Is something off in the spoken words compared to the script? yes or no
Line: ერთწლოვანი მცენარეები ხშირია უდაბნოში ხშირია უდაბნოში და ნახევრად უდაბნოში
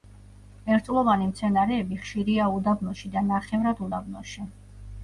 yes